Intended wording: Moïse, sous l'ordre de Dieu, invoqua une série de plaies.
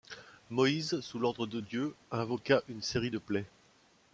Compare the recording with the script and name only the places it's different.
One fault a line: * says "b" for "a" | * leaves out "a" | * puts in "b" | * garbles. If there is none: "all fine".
all fine